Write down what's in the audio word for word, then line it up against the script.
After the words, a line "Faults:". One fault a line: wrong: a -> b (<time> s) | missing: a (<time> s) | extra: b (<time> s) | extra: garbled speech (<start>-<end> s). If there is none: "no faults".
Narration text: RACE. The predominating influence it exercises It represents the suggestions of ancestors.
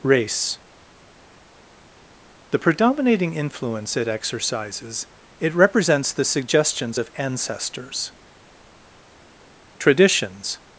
RACE. The predominating influence it exercises It represents the suggestions of ancestors. TRADITIONS
Faults:
extra: TRADITIONS (9.8 s)